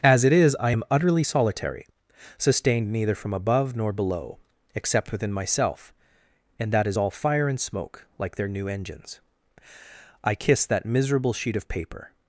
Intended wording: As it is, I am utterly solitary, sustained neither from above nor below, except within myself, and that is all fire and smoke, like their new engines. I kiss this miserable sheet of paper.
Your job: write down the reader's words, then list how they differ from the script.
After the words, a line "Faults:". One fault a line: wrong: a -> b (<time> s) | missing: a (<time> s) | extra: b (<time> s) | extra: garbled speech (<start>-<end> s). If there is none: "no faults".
As it is, I am utterly solitary, sustained neither from above nor below, except within myself, and that is all fire and smoke, like their new engines. I kiss that miserable sheet of paper.
Faults:
wrong: this -> that (10.6 s)